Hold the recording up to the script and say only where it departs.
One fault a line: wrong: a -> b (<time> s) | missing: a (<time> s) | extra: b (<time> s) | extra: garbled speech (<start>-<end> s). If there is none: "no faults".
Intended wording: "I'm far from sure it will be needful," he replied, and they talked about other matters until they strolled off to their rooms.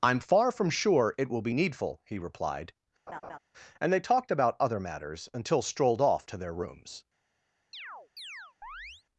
missing: they (5.6 s)